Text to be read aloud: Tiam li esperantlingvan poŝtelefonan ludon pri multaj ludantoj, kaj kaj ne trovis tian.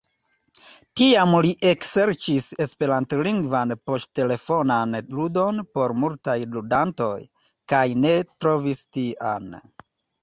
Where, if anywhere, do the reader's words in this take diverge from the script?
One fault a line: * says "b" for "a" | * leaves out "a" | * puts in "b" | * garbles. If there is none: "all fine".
* puts in "ekserĉis"
* says "por" for "pri"
* leaves out "kaj"